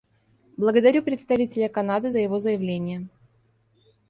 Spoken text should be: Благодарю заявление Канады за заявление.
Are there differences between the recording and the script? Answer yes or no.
yes